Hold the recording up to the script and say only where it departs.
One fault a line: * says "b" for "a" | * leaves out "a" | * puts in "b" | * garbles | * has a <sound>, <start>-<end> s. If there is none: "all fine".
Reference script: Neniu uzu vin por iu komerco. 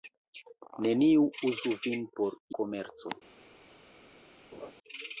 * leaves out "iu"
* has a laugh, 4.5-4.7 s